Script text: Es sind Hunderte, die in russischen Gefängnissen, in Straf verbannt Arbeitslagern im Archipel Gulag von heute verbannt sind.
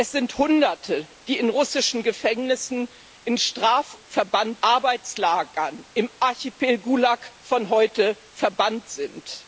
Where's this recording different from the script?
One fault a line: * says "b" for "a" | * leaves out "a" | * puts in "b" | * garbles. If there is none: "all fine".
all fine